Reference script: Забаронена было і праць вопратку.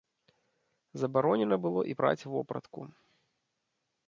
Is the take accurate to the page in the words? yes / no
yes